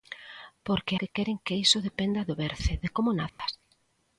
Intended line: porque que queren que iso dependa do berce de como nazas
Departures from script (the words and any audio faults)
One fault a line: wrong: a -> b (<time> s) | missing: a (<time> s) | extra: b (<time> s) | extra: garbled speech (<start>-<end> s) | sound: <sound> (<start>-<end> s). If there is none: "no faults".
sound: dropout (3.3-3.4 s)